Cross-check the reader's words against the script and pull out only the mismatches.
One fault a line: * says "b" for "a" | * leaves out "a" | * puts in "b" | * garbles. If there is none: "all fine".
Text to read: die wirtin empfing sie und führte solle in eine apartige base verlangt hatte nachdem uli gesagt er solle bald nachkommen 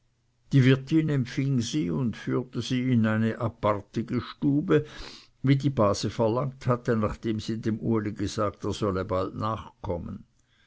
* says "sie" for "solle"
* puts in "stube wie die"
* puts in "sie dem"